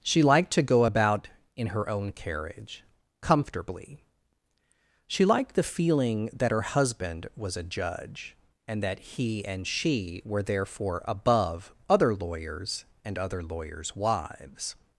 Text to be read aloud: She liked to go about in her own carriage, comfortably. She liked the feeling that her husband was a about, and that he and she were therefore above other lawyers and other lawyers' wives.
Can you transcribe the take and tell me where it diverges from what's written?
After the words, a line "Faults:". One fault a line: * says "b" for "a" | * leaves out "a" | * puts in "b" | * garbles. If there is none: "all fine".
She liked to go about in her own carriage, comfortably. She liked the feeling that her husband was a judge, and that he and she were therefore above other lawyers and other lawyers' wives.
Faults:
* says "judge" for "about"